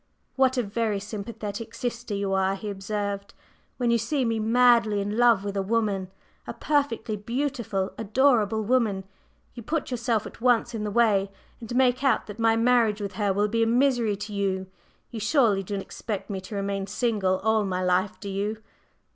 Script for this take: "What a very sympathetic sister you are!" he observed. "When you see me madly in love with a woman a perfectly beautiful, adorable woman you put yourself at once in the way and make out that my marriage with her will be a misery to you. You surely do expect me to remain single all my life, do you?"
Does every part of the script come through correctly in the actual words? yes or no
yes